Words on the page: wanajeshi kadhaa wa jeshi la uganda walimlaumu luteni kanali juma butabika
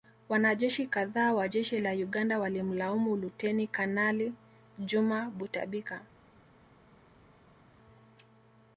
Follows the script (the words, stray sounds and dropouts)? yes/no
yes